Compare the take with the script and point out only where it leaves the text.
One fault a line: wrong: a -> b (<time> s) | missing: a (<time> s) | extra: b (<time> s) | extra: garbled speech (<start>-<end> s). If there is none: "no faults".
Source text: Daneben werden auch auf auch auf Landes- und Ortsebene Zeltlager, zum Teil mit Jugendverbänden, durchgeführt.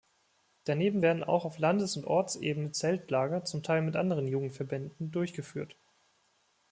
missing: auch auf (1.6 s)
extra: anderen (4.0 s)